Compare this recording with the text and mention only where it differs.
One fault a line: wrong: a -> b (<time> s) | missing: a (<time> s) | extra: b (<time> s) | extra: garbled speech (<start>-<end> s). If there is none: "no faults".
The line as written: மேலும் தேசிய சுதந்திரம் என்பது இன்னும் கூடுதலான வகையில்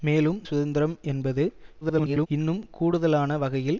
missing: தேசிய (0.4 s)
extra: garbled speech (1.8-2.3 s)